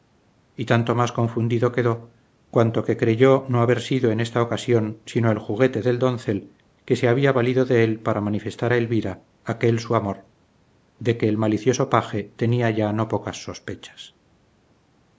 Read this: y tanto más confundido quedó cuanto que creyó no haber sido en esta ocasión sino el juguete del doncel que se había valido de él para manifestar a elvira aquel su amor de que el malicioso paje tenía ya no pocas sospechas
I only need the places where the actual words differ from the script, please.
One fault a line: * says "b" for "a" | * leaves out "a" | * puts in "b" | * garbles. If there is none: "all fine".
all fine